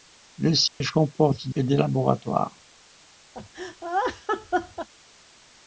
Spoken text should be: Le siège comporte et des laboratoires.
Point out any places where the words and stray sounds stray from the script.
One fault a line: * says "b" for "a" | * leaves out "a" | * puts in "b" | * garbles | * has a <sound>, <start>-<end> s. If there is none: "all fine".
* has a dropout, 0.7-0.8 s
* has a laugh, 3.3-4.9 s